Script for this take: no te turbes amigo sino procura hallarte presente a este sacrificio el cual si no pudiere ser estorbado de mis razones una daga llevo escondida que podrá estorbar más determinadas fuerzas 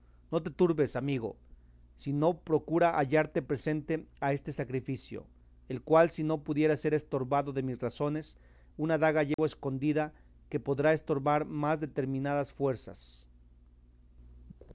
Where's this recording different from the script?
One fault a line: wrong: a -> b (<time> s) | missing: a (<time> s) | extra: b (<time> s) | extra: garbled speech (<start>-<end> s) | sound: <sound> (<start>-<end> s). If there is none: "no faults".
sound: dropout (9.3-9.4 s)